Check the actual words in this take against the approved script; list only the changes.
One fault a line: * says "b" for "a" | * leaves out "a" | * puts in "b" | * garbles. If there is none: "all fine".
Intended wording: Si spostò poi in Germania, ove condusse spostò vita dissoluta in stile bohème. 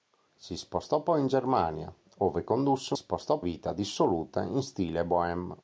all fine